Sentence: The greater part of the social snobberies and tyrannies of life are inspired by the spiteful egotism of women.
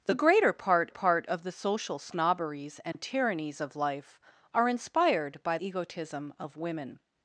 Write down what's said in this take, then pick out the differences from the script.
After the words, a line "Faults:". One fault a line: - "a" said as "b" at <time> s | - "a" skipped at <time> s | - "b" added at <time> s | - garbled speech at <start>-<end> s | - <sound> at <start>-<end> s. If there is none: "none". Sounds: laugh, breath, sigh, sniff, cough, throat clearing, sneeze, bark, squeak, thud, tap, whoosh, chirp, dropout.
The greater part part of the social snobberies and tyrannies of life are inspired by egotism of women.
Faults:
- "part" added at 0.9 s
- dropout at 2.9-2.9 s
- "the spiteful" skipped at 5.6 s